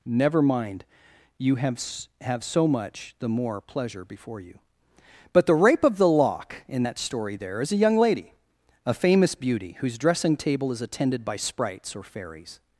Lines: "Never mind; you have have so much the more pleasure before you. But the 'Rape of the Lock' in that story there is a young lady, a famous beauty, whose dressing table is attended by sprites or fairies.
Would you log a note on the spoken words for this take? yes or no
no